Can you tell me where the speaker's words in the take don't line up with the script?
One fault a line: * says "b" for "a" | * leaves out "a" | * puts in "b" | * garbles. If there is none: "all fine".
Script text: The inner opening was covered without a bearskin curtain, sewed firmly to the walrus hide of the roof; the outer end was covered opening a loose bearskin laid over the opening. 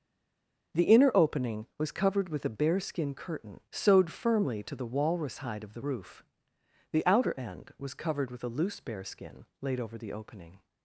* says "with" for "without"
* says "with" for "opening"